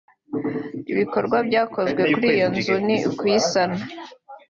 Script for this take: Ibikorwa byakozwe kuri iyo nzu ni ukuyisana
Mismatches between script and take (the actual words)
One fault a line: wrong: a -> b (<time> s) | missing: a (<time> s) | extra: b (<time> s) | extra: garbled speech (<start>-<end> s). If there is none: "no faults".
no faults